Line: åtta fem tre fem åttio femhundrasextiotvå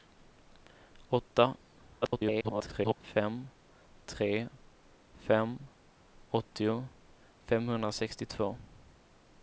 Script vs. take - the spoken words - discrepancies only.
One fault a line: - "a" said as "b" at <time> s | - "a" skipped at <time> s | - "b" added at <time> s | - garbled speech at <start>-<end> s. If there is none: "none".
- garbled speech at 2.0-3.0 s